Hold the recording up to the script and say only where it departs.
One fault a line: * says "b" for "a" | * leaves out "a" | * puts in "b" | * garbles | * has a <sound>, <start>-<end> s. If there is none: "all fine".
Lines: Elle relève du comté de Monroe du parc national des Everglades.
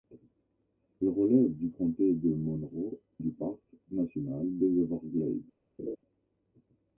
* has a laugh, 5.8-6.0 s